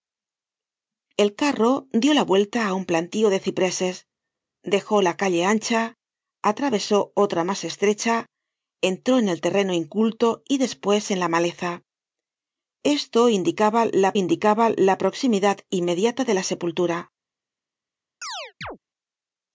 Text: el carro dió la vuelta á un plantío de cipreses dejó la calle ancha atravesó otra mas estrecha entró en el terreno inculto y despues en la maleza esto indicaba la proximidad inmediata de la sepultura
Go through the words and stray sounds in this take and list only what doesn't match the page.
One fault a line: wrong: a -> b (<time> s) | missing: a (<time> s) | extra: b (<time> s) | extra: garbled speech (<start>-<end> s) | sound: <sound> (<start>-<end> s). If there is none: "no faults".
extra: indicaba la (14.1 s)
sound: chirp (18.2-18.8 s)